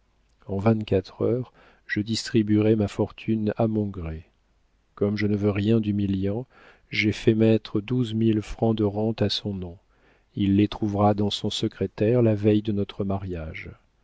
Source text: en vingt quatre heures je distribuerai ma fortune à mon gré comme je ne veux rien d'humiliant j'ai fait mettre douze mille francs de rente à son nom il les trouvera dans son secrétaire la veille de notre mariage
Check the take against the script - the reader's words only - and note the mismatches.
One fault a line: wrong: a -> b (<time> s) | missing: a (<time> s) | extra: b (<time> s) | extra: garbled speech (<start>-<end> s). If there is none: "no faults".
no faults